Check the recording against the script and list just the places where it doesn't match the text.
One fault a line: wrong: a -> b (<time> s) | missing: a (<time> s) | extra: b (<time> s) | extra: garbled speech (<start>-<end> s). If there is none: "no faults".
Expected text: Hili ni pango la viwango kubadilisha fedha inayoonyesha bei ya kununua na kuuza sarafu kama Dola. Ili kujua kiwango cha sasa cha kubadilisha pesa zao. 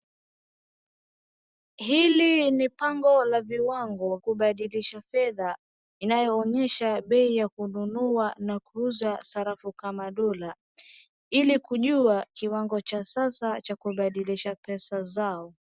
no faults